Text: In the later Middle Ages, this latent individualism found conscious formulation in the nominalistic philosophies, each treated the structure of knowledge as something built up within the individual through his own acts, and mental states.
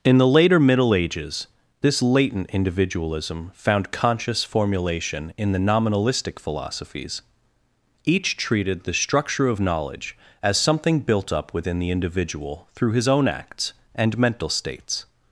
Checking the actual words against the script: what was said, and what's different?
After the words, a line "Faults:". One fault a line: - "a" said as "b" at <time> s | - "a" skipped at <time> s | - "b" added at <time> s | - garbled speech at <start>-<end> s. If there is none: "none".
In the later Middle Ages, this latent individualism found conscious formulation in the nominalistic philosophies, each treated the structure of knowledge as something built up within the individual through his own acts, and mental states.
Faults:
none